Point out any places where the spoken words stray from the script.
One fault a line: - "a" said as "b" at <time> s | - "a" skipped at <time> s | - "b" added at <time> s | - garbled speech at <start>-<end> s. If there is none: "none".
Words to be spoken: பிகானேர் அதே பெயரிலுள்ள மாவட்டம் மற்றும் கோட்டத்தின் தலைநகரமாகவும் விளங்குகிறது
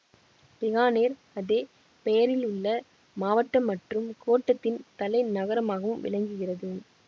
none